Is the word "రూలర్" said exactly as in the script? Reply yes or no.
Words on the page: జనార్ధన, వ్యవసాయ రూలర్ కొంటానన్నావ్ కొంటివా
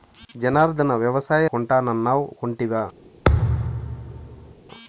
no